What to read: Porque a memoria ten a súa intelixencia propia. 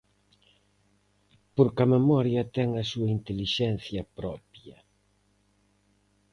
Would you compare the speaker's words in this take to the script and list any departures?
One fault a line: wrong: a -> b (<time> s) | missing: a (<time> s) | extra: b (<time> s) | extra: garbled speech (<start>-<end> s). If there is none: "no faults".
no faults